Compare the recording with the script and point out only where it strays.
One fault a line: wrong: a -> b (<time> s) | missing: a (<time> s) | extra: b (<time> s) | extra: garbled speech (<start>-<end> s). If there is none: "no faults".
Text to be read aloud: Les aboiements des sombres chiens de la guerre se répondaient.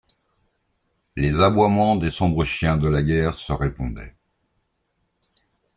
no faults